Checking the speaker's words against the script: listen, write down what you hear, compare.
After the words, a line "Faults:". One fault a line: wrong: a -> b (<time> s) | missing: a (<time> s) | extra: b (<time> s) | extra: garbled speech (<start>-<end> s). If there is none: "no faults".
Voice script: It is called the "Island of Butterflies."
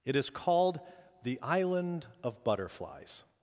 It is called the "Island of Butterflies."
Faults:
no faults